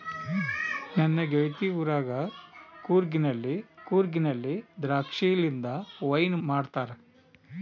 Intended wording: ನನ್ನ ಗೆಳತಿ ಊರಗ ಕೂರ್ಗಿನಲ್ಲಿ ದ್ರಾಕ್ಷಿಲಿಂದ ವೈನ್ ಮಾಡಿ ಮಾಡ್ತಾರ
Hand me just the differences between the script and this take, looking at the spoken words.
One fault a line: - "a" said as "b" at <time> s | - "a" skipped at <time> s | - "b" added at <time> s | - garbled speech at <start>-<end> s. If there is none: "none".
- "ಕೂರ್ಗಿನಲ್ಲಿ" added at 3.9 s
- "ಮಾಡಿ" skipped at 6.4 s